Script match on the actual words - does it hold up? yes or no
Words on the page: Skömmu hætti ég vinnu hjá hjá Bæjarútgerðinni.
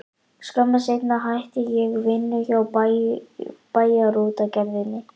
no